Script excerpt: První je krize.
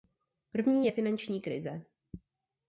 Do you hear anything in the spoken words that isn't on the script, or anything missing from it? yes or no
yes